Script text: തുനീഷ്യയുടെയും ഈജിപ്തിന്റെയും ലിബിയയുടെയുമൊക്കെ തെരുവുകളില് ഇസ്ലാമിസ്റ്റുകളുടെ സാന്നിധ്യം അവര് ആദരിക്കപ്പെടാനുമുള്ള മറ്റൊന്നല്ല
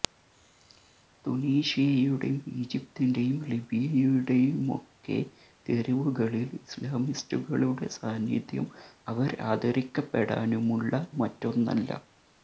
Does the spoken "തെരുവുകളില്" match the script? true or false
true